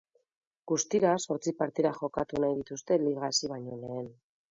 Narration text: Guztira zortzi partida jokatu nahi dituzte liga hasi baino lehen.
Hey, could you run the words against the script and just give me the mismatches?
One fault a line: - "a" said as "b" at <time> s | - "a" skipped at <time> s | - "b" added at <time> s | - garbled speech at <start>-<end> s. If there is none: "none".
none